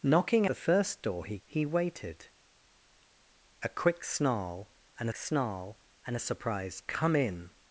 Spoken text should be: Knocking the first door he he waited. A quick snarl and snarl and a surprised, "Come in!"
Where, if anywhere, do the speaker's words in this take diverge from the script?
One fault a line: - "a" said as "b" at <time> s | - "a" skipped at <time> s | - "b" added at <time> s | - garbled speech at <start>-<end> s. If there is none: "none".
none